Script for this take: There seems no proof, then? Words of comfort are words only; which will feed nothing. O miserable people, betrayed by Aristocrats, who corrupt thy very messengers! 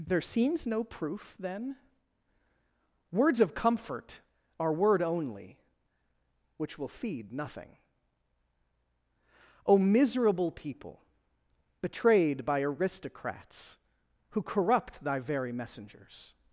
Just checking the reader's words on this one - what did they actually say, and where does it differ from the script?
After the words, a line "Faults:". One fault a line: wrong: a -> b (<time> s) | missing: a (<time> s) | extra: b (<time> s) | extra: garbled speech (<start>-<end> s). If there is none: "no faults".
There seems no proof, then? Words of comfort are word only; which will feed nothing. O miserable people, betrayed by Aristocrats, who corrupt thy very messengers!
Faults:
wrong: words -> word (4.7 s)